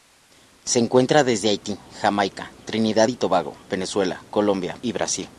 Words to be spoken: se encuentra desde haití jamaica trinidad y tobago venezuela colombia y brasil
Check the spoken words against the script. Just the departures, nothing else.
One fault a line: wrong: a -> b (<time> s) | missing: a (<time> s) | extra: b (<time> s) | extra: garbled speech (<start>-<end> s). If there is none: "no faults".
no faults